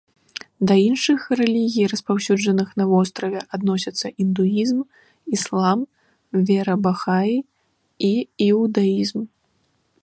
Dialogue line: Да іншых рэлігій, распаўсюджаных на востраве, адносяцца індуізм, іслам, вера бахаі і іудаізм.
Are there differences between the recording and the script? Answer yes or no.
no